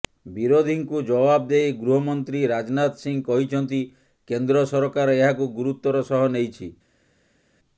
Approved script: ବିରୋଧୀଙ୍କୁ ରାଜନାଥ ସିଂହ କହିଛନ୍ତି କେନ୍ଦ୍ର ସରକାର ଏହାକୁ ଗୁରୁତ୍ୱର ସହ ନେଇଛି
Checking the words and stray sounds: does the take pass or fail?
fail